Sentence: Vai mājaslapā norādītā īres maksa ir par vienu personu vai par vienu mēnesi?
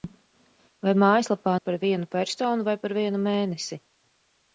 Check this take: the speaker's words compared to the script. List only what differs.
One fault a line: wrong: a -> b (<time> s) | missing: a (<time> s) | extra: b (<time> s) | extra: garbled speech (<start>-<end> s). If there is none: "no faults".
missing: norādītā īres maksa (1.5 s)